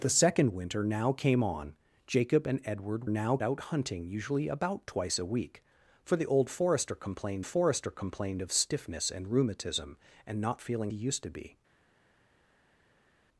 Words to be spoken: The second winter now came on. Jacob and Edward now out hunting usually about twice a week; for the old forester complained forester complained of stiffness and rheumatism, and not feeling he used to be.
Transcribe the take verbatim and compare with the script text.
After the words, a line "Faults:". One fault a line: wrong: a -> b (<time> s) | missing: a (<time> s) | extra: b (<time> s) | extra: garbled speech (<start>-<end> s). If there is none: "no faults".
The second winter now came on. Jacob and Edward now out hunting usually about twice a week; for the old forester complained forester complained of stiffness and rheumatism, and not feeling he used to be.
Faults:
no faults